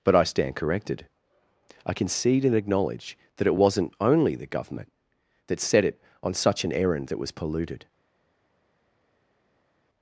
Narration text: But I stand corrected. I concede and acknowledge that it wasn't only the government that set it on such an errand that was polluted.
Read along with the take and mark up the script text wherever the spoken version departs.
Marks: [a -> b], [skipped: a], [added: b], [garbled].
But I stand corrected. I concede and acknowledge that it wasn't only the government that set it on such an errand that was polluted.